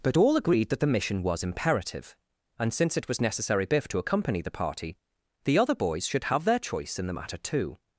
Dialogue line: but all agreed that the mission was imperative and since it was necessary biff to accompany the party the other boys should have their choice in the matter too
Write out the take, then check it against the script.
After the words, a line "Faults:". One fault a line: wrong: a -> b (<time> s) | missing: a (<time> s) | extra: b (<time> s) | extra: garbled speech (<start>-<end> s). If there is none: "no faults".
but all agreed that the mission was imperative and since it was necessary biff to accompany the party the other boys should have their choice in the matter too
Faults:
no faults